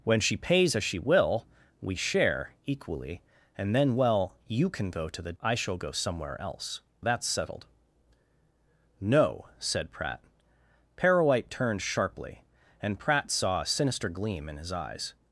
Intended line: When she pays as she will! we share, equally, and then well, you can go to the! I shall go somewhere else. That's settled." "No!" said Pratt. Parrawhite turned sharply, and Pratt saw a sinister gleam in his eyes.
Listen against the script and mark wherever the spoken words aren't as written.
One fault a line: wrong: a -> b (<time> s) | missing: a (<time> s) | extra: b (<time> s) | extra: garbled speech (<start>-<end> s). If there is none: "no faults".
no faults